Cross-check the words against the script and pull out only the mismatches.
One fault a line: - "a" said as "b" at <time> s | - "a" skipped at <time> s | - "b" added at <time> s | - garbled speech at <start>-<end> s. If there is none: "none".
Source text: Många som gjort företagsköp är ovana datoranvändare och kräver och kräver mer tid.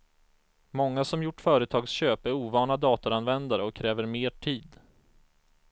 - "och kräver" skipped at 4.1 s